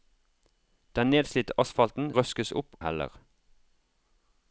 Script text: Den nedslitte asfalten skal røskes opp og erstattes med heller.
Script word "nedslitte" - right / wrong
right